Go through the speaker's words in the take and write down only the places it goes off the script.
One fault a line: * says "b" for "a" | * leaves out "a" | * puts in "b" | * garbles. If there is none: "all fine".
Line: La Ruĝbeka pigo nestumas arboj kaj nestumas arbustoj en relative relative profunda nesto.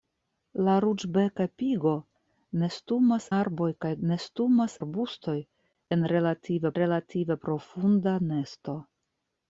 all fine